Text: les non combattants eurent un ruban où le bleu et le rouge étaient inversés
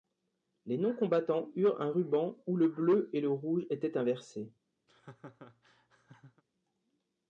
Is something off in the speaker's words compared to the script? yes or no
no